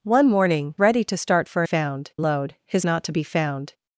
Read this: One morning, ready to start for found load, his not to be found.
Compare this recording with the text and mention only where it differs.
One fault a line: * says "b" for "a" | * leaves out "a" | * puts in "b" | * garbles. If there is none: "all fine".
all fine